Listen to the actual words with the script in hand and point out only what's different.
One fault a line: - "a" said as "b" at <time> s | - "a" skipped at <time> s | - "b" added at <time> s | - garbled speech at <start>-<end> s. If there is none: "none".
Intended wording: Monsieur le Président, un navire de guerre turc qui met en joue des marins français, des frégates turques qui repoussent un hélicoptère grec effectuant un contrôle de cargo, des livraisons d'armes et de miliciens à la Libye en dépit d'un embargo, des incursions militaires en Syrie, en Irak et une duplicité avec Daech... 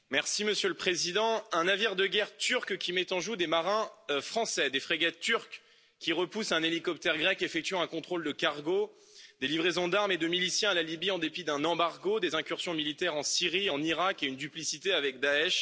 none